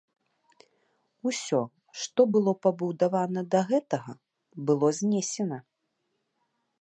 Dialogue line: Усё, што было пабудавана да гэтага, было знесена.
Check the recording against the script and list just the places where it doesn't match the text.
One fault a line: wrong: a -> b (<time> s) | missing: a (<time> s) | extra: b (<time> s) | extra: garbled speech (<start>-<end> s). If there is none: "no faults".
no faults